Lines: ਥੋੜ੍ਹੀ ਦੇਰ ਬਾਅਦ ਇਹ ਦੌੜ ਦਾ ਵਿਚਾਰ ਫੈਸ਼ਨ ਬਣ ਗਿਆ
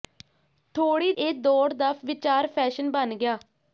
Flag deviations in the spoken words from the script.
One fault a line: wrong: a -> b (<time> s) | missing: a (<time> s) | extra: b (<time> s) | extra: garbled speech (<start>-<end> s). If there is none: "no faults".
missing: ਦੇਰ ਬਾਅਦ (1.1 s)